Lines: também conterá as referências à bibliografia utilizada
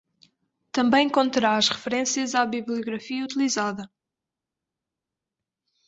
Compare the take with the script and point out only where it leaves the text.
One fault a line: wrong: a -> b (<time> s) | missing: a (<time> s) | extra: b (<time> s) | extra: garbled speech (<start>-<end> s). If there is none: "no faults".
no faults